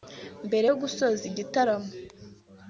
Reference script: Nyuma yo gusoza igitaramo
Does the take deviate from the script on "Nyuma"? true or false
true